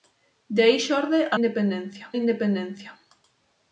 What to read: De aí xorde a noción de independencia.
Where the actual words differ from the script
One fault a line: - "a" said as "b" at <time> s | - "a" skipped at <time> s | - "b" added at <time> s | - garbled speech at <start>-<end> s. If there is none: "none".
- "noción" said as "independencia" at 1.4 s